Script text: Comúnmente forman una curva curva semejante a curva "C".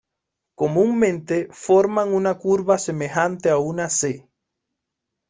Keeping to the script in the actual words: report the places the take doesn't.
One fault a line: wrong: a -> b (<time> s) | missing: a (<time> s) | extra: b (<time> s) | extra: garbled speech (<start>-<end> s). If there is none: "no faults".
missing: curva (2.8 s)
wrong: curva -> una (3.6 s)